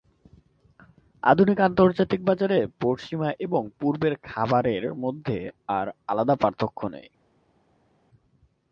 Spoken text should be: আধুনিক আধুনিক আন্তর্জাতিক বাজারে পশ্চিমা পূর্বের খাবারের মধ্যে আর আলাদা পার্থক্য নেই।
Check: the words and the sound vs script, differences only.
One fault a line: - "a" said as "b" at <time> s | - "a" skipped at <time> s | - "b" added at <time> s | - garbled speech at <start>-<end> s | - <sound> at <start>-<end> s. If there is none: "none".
- "আধুনিক" skipped at 1.6 s
- "এবং" added at 3.4 s